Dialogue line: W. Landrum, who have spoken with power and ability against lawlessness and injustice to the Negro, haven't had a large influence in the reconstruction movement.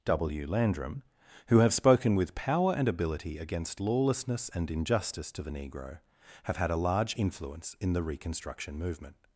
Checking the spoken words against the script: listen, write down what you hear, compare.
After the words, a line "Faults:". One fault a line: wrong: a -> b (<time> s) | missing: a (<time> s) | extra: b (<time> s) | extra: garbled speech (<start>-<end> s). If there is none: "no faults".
W. Landrum, who have spoken with power and ability against lawlessness and injustice to the Negro, have had a large influence in the reconstruction movement.
Faults:
wrong: haven't -> have (6.4 s)